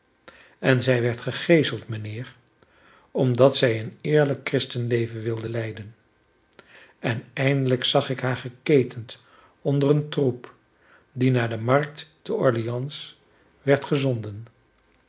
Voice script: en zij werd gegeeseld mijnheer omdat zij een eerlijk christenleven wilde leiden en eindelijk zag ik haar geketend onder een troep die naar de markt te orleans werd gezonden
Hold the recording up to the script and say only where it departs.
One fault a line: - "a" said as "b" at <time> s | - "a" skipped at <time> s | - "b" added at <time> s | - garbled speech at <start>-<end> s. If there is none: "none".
none